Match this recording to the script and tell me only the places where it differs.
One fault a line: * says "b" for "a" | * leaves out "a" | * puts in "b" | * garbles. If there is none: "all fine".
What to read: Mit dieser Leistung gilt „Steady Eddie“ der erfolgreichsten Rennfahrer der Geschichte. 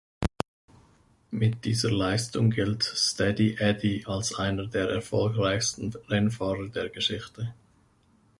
* puts in "als einer"